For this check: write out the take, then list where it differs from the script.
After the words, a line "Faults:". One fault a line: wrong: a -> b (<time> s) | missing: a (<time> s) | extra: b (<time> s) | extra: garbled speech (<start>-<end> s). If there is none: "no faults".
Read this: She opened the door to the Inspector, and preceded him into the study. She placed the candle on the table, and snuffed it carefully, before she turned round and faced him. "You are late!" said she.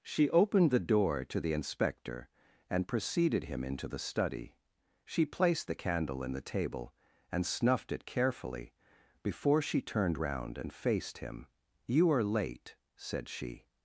She opened the door to the Inspector, and preceded him into the study. She placed the candle in the table, and snuffed it carefully, before she turned round and faced him. "You are late!" said she.
Faults:
wrong: on -> in (6.2 s)